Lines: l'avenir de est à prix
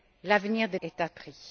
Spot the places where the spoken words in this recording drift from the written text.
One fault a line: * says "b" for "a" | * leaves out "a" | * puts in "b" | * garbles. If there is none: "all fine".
all fine